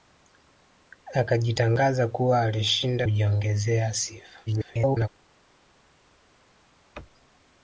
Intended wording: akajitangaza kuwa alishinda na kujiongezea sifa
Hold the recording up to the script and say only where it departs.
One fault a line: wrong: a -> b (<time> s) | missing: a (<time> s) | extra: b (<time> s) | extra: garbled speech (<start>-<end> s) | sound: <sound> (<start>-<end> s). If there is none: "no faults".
missing: na (3.1 s)
extra: garbled speech (4.5-5.1 s)